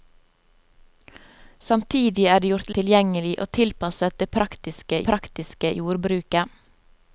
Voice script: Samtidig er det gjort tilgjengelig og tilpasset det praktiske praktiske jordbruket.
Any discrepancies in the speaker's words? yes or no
no